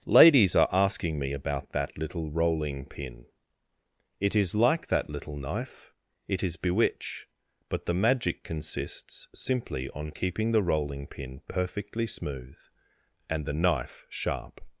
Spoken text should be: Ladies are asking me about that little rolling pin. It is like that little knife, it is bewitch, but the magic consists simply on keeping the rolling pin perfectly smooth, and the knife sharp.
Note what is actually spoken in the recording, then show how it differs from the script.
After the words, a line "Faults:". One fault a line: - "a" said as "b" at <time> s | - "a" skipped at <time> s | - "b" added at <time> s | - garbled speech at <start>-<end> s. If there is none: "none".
Ladies are asking me about that little rolling pin. It is like that little knife, it is bewitch, but the magic consists simply on keeping the rolling pin perfectly smooth, and the knife sharp.
Faults:
none